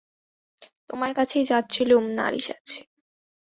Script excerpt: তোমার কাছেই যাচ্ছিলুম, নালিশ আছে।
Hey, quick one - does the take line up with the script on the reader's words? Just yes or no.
yes